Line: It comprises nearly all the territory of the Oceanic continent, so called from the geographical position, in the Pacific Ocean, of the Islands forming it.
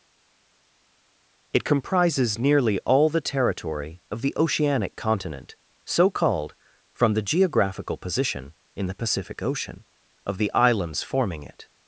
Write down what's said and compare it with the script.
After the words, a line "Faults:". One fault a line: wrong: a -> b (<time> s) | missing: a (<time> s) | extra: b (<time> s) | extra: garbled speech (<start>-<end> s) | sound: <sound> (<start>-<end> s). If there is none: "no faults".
It comprises nearly all the territory of the Oceanic continent, so called from the geographical position, in the Pacific Ocean, of the Islands forming it.
Faults:
no faults